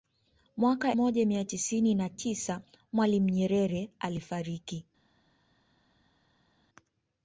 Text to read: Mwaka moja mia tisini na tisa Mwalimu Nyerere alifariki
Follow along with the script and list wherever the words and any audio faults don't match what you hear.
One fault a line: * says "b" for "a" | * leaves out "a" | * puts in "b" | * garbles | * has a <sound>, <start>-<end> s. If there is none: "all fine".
all fine